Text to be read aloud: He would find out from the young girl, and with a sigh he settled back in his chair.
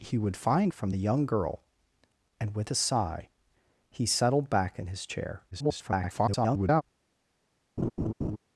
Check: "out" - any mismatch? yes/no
yes